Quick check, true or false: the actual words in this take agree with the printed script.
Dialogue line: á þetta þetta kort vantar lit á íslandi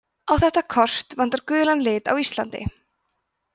false